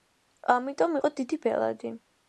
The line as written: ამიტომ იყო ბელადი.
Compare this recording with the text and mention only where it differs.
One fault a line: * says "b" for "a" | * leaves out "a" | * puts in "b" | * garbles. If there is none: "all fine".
* puts in "დიდი"